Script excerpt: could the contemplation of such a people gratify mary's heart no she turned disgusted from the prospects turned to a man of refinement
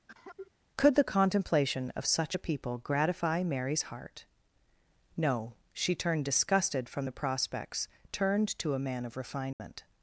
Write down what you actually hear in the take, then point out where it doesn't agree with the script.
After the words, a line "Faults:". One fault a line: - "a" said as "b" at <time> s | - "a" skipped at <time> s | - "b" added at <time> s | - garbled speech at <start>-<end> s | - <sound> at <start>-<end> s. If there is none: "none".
could the contemplation of such a people gratify mary's heart no she turned disgusted from the prospects turned to a man of refinement
Faults:
- cough at 0.1-0.5 s
- dropout at 9.5-9.6 s